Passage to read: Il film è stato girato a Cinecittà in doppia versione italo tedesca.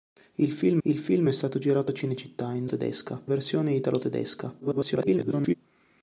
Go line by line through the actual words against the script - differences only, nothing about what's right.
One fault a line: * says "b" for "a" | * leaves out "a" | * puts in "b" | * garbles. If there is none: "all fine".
* puts in "il film"
* says "tedesca" for "doppia"
* garbles